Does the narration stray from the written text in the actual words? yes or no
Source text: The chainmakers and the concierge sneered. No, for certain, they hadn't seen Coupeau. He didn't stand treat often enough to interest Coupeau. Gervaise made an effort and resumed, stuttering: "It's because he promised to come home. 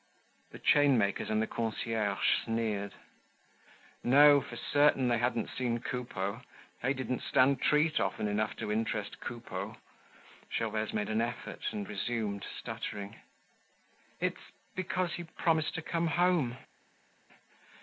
yes